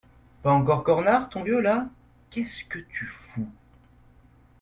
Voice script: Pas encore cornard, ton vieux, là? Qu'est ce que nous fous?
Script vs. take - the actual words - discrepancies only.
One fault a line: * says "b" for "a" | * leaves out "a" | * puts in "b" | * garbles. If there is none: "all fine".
* says "tu" for "nous"